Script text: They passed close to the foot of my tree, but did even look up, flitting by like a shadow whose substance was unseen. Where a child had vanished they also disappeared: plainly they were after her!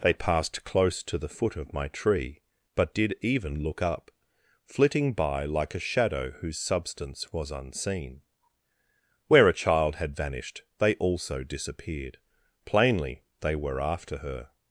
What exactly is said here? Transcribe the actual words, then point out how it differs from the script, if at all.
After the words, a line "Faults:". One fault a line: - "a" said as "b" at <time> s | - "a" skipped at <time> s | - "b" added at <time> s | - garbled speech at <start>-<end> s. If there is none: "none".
They passed close to the foot of my tree, but did even look up, flitting by like a shadow whose substance was unseen. Where a child had vanished they also disappeared: plainly they were after her!
Faults:
none